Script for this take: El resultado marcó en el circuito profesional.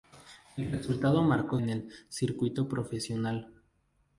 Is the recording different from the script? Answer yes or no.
no